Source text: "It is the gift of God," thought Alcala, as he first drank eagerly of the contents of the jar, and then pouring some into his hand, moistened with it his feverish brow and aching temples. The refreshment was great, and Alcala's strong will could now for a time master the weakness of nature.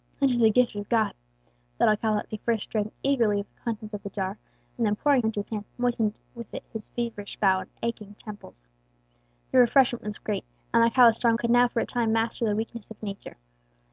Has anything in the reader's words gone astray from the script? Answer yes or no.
yes